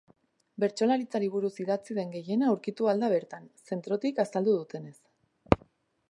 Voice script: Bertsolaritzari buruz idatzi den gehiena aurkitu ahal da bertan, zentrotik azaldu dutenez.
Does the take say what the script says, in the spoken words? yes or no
yes